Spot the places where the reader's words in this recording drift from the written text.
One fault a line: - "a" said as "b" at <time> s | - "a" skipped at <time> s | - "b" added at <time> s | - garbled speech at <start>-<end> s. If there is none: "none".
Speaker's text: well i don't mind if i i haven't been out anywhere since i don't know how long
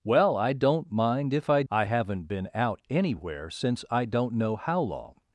none